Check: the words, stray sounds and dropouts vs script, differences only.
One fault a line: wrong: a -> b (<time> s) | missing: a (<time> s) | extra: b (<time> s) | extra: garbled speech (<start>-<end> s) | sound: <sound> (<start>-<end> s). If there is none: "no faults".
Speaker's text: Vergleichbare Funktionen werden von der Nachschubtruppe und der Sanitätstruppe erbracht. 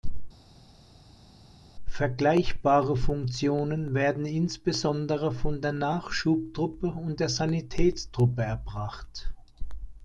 extra: insbesondere (4.3 s)